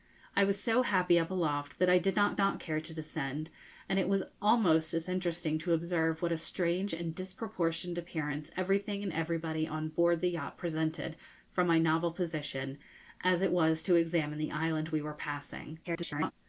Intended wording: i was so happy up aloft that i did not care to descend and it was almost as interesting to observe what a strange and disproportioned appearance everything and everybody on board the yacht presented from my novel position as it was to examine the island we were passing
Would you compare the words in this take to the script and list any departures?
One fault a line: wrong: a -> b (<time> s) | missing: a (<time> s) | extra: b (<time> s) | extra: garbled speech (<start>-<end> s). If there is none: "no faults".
extra: not (2.4 s)
extra: garbled speech (15.8-16.3 s)